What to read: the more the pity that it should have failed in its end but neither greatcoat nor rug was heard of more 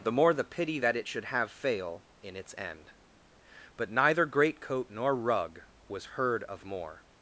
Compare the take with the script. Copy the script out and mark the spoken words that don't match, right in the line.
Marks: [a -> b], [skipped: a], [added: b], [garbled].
the more the pity that it should have [failed -> fail] in its end but neither greatcoat nor rug was heard of more